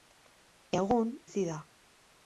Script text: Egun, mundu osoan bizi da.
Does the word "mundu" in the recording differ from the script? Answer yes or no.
yes